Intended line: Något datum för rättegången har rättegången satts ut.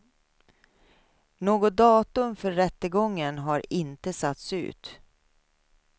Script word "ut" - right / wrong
right